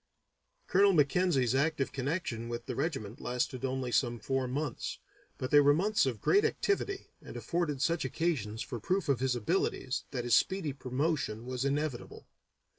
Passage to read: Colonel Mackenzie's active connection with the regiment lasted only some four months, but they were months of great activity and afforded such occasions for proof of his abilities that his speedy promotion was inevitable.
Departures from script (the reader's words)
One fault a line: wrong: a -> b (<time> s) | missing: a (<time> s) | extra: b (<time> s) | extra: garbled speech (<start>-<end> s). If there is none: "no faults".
no faults